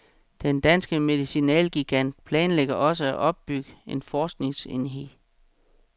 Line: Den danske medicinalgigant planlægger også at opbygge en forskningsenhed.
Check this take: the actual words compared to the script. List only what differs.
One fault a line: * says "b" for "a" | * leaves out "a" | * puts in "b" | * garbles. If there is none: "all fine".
all fine